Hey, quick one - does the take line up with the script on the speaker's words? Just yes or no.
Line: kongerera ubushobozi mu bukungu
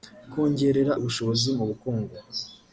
yes